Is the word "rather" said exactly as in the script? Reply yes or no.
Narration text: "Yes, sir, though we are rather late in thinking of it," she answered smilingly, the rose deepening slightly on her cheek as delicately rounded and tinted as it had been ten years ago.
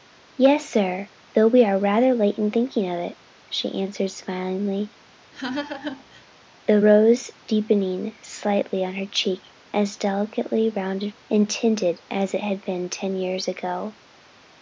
yes